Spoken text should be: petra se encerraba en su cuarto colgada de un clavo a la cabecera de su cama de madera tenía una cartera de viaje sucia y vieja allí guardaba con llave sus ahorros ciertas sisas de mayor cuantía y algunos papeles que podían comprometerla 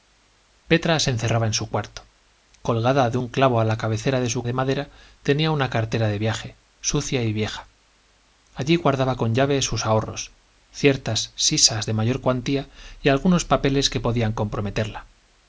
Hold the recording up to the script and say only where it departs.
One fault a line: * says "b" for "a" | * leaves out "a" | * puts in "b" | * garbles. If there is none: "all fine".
* leaves out "cama"